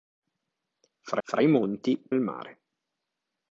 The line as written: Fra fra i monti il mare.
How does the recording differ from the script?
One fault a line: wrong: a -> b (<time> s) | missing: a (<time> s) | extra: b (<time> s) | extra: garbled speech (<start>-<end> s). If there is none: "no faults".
no faults